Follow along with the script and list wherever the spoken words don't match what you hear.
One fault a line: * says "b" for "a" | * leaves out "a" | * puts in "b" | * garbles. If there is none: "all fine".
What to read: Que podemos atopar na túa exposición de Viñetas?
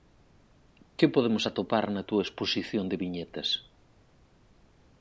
all fine